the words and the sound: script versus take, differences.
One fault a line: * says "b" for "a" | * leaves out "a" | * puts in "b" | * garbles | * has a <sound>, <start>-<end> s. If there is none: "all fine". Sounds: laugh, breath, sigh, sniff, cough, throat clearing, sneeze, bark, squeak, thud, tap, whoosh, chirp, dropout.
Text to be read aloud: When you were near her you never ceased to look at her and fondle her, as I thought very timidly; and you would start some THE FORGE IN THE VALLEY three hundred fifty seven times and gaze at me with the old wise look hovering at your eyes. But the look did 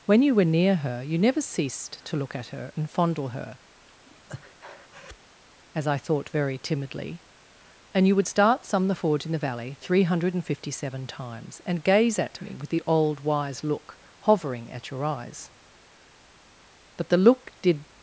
* has a breath, 4.0-5.2 s